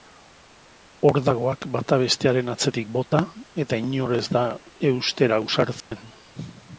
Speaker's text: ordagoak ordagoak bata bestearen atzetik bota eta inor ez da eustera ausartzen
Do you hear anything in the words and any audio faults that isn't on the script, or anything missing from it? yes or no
yes